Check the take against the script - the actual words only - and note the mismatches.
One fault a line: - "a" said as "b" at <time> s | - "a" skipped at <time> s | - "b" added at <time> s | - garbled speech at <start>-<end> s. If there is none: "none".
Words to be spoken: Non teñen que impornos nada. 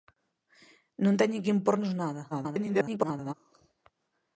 - garbled speech at 2.3-3.3 s